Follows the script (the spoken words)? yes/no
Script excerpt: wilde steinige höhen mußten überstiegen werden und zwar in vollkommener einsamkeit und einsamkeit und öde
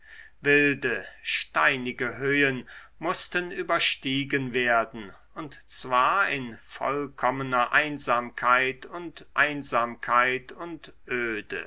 yes